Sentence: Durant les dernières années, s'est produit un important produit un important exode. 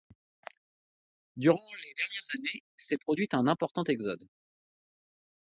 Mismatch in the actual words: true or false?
true